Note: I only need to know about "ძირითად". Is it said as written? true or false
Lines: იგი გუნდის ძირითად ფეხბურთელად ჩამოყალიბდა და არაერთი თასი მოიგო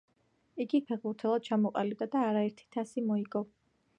false